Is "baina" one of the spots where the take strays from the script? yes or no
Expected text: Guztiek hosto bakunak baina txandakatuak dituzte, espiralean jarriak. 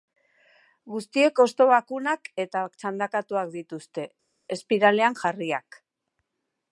yes